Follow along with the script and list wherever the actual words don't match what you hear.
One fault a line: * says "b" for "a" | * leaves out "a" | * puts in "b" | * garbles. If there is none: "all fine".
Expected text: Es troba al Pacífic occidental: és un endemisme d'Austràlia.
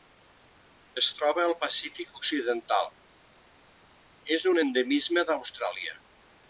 all fine